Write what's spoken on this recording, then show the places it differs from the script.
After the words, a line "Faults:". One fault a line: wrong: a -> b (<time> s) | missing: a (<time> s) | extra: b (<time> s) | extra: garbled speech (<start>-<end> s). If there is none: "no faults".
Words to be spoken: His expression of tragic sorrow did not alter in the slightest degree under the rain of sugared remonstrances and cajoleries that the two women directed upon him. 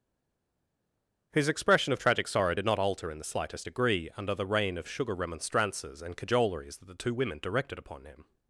His expression of tragic sorrow did not alter in the slightest degree under the rain of sugar remonstrances and cajoleries that the two women directed upon him.
Faults:
wrong: sugared -> sugar (4.9 s)